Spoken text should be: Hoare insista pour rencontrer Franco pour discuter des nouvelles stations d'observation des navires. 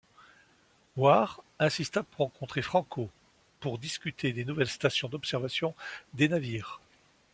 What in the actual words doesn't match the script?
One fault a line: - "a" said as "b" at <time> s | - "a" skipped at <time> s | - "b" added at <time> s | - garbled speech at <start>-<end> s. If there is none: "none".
none